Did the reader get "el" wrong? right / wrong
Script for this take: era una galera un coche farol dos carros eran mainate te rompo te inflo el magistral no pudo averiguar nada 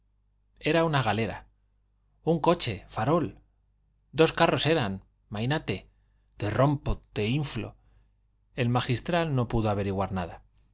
right